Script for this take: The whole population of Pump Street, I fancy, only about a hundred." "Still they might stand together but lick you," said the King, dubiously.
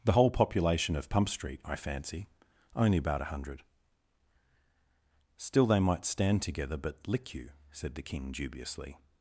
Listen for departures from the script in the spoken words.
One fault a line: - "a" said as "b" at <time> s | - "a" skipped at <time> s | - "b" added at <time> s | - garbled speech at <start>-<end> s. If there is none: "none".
none